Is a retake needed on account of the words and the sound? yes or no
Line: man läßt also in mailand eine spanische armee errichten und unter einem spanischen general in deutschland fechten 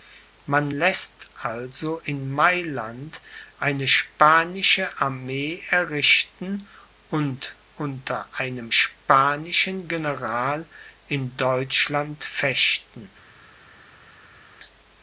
no